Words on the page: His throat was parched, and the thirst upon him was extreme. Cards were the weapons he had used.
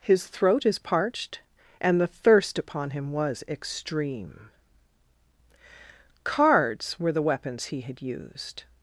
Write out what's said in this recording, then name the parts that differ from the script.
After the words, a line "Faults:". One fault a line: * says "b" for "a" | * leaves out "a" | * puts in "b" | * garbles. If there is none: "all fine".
His throat is parched, and the thirst upon him was extreme. Cards were the weapons he had used.
Faults:
* says "is" for "was"